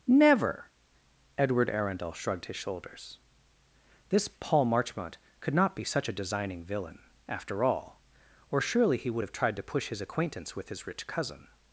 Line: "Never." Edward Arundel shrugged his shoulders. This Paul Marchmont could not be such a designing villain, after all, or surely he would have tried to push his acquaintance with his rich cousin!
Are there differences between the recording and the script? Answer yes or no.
no